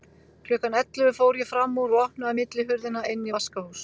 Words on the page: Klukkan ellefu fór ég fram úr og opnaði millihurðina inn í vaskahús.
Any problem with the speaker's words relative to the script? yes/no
no